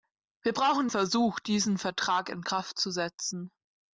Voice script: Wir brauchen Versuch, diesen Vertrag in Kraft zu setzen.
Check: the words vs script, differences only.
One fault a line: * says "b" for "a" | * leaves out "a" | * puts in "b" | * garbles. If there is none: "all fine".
all fine